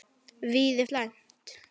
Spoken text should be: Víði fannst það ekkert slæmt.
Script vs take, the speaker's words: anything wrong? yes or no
yes